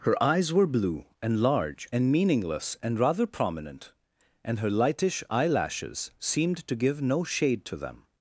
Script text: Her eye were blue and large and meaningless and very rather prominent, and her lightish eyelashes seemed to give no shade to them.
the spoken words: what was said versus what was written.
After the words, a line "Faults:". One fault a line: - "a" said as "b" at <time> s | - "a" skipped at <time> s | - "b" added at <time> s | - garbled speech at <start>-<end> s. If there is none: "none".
Her eyes were blue and large and meaningless and rather prominent, and her lightish eyelashes seemed to give no shade to them.
Faults:
- "eye" said as "eyes" at 0.2 s
- "very" skipped at 3.0 s